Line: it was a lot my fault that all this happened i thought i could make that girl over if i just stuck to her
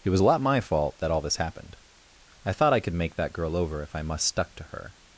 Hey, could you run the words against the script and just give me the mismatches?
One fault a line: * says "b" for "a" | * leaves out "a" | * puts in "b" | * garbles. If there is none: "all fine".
* says "must" for "just"